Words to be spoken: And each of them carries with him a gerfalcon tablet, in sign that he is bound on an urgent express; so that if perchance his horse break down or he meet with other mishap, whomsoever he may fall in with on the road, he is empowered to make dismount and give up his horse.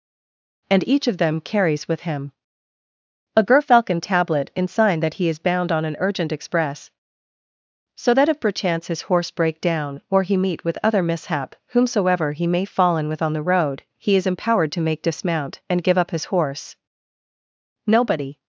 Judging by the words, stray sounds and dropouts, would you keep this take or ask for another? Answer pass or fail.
fail